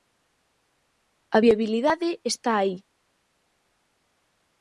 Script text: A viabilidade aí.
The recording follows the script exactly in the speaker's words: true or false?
false